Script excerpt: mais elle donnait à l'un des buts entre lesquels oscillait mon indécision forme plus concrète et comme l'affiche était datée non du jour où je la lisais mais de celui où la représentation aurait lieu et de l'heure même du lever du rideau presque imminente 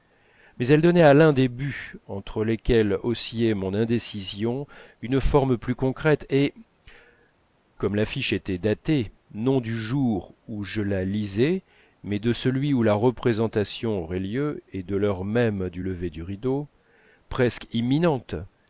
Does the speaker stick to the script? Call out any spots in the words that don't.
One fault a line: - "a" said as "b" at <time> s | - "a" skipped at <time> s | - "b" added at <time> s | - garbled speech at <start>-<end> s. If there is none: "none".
- "une" added at 5.0 s